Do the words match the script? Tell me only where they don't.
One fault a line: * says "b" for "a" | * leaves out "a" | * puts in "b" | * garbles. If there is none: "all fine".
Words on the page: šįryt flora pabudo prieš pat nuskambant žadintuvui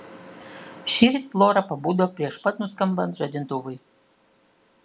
all fine